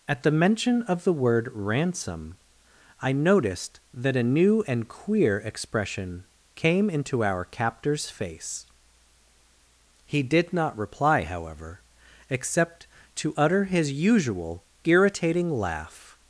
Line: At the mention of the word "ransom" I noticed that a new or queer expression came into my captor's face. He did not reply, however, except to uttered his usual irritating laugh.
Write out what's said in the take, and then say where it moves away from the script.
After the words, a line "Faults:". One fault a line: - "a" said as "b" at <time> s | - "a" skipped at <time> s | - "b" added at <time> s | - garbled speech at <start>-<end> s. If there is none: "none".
At the mention of the word "ransom" I noticed that a new and queer expression came into our captor's face. He did not reply, however, except to utter his usual irritating laugh.
Faults:
- "or" said as "and" at 4.7 s
- "my" said as "our" at 7.2 s
- "uttered" said as "utter" at 13.4 s